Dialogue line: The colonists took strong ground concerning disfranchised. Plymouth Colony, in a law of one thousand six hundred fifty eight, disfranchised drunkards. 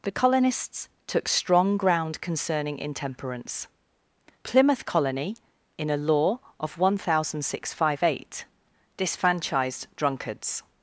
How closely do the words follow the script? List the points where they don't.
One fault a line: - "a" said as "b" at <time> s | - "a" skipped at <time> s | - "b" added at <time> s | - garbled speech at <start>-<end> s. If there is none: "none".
- "disfranchised" said as "intemperance" at 2.8 s